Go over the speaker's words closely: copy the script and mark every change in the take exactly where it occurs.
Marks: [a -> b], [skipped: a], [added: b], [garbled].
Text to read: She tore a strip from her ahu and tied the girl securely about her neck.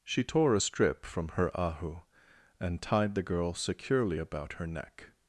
She tore a strip from her ahu and tied the girl securely about her neck.